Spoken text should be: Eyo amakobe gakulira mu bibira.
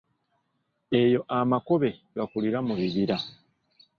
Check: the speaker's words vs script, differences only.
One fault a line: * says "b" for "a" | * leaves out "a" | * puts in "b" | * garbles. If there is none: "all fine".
all fine